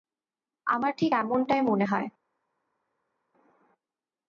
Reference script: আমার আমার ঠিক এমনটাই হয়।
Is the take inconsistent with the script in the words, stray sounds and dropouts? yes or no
yes